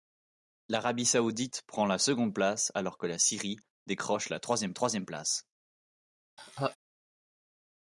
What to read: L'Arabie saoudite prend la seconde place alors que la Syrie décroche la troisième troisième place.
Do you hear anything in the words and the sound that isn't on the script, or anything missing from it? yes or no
yes